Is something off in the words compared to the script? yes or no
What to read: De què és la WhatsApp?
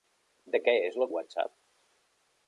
no